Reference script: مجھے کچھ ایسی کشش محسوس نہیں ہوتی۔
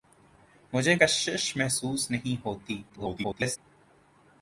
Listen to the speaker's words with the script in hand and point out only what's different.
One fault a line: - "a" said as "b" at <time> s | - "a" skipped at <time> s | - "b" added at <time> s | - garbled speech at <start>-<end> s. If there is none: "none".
- "کچھ ایسی" skipped at 0.9 s
- garbled speech at 2.9-3.6 s